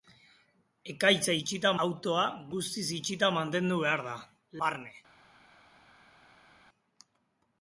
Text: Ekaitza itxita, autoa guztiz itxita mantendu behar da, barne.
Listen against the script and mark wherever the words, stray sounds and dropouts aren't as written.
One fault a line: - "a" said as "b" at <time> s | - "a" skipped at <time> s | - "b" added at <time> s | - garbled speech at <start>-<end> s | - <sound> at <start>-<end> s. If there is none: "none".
none